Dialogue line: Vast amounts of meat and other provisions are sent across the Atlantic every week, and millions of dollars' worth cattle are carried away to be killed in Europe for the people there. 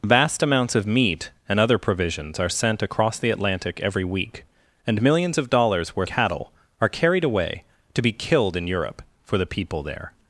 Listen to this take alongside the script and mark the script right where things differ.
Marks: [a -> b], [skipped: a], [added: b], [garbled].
Vast amounts of meat and other provisions are sent across the Atlantic every week, and millions of dollars' worth cattle are carried away to be killed in Europe for the people there.